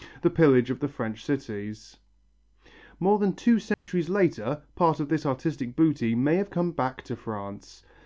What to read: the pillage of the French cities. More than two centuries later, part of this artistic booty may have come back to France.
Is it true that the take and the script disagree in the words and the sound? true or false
true